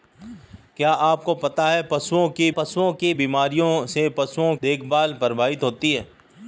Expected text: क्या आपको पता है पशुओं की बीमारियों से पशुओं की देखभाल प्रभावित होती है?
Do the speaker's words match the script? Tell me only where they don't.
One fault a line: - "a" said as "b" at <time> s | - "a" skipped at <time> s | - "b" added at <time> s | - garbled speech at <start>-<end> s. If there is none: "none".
- "पशुओं की" added at 2.5 s
- "की" skipped at 4.5 s